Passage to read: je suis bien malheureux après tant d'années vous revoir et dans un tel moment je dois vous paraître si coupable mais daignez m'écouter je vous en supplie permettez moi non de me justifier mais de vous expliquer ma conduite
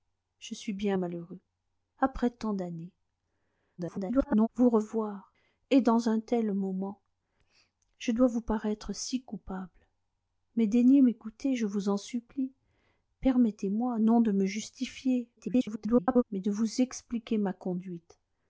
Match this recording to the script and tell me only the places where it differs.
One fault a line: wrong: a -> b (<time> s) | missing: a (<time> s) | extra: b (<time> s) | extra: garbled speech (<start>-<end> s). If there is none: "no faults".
extra: garbled speech (3.8-4.5 s)
extra: garbled speech (15.4-16.2 s)